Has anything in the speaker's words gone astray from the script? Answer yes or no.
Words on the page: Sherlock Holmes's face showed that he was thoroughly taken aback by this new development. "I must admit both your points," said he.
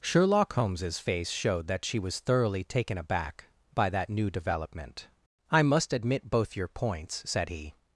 yes